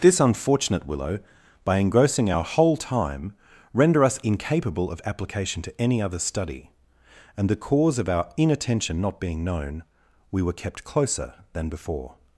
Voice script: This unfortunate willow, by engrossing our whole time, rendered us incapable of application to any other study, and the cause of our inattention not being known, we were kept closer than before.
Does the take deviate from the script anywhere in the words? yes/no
yes